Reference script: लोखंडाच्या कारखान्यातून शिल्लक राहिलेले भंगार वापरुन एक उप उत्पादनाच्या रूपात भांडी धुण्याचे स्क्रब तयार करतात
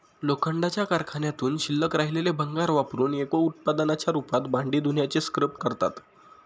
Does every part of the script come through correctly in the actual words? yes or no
no